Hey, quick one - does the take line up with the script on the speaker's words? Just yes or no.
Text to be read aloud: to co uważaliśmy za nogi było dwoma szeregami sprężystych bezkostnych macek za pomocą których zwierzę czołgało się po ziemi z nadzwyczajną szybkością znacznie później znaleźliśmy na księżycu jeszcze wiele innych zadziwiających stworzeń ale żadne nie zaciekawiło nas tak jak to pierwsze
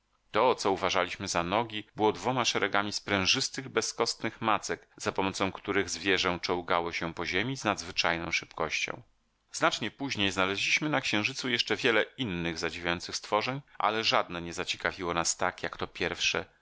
yes